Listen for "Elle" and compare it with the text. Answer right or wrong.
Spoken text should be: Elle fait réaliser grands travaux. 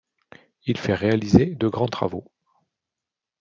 wrong